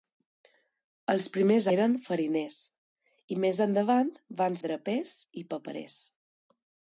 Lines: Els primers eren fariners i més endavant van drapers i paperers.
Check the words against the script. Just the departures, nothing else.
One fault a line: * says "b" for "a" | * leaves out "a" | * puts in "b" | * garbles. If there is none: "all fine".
all fine